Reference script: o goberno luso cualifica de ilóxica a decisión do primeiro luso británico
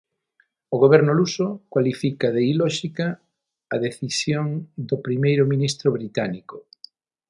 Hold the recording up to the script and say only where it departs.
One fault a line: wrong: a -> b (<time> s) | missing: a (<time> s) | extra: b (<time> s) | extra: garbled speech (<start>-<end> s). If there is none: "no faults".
wrong: luso -> ministro (5.5 s)